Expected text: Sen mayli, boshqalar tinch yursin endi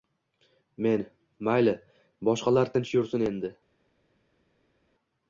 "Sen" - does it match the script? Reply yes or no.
no